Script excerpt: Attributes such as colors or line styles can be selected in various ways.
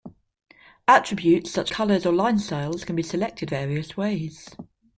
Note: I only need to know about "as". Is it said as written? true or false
false